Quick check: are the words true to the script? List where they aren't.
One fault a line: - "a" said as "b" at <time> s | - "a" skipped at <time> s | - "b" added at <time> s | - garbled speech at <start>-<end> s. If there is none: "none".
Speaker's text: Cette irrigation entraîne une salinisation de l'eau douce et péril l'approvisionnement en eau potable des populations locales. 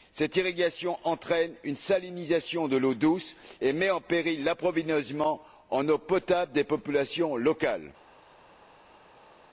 - "met en" added at 3.7 s